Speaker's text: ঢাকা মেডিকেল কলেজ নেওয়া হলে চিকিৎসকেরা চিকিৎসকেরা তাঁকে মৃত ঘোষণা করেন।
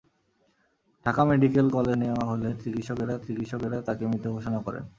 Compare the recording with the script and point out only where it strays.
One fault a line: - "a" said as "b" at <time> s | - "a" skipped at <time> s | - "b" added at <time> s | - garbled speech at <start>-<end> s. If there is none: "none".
none